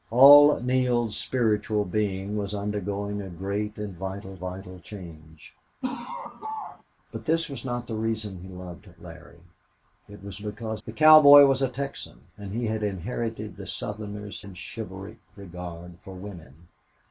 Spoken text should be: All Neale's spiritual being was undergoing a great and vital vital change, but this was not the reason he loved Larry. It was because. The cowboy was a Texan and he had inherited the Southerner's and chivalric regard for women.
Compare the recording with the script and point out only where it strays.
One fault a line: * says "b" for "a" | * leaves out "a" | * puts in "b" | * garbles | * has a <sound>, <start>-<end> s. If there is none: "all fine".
* has a laugh, 5.8-6.8 s